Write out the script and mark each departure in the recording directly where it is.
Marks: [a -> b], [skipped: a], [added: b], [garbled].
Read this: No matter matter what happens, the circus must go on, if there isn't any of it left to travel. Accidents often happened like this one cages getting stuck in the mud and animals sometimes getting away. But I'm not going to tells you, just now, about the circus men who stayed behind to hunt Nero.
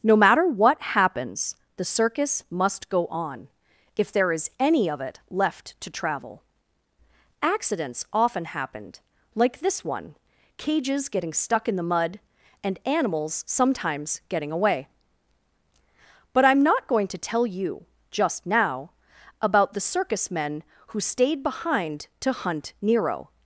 No matter [skipped: matter] what happens, the circus must go on, if there [isn't -> is] any of it left to travel. Accidents often happened like this one cages getting stuck in the mud and animals sometimes getting away. But I'm not going to [tells -> tell] you, just now, about the circus men who stayed behind to hunt Nero.